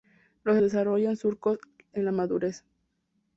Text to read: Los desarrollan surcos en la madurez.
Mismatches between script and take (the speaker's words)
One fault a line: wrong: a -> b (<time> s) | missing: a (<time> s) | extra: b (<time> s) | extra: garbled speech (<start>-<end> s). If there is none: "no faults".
no faults